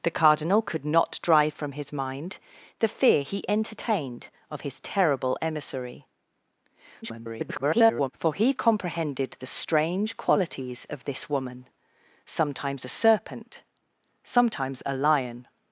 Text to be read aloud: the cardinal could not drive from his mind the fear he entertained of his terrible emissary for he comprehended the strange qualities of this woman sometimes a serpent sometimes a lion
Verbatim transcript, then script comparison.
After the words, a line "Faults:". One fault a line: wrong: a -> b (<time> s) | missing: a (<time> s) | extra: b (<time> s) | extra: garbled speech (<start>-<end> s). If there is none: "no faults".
the cardinal could not drive from his mind the fear he entertained of his terrible emissary [garbled] for he comprehended the strange qualities of this woman sometimes a serpent sometimes a lion
Faults:
extra: garbled speech (7.0-8.1 s)